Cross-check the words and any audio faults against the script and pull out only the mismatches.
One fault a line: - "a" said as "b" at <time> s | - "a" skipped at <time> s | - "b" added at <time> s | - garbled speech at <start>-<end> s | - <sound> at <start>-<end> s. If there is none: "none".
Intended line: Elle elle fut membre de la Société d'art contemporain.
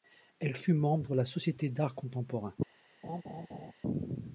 - "elle" skipped at 0.6 s
- laugh at 3.0-3.7 s